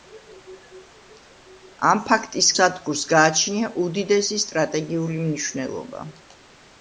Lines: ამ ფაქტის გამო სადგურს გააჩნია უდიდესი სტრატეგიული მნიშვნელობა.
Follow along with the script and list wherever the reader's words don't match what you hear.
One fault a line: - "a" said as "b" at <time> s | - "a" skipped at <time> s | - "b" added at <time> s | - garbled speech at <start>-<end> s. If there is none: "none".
- "გამო" skipped at 2.5 s